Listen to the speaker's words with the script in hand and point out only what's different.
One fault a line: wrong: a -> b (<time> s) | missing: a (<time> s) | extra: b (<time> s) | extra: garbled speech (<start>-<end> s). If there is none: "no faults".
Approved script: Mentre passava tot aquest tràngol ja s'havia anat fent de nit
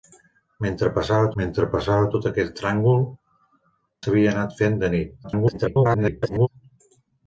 extra: mentre passava (1.4 s)
missing: ja (3.0 s)
extra: garbled speech (5.2-6.5 s)